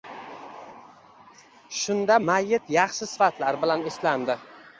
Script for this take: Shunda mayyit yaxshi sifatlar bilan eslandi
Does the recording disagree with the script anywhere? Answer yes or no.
no